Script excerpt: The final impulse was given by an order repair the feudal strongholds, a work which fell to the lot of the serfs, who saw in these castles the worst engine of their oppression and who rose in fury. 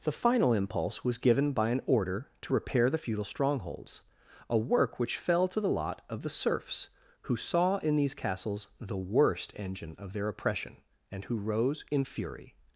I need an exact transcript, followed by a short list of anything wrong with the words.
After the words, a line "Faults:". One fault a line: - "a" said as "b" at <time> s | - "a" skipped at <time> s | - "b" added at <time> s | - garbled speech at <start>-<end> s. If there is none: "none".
The final impulse was given by an order to repair the feudal strongholds, a work which fell to the lot of the serfs, who saw in these castles the worst engine of their oppression and who rose in fury.
Faults:
- "to" added at 2.4 s